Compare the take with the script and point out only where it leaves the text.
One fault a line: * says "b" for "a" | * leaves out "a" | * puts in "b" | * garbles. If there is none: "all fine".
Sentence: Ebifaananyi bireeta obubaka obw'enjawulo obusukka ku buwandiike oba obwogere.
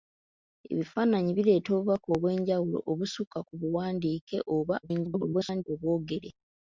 * garbles